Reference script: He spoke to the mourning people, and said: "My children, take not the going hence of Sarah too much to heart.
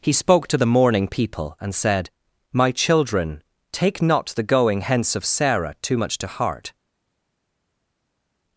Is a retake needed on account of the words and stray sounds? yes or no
no